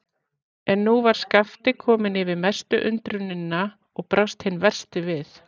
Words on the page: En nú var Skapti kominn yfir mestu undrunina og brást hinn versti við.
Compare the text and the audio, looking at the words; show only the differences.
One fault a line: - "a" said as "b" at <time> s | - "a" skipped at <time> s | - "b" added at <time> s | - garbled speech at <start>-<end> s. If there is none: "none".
none